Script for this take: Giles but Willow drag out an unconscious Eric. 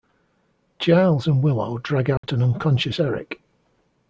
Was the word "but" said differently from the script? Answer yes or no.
yes